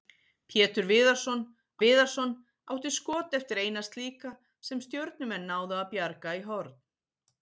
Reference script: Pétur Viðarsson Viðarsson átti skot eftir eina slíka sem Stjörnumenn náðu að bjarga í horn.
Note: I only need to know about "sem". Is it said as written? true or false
true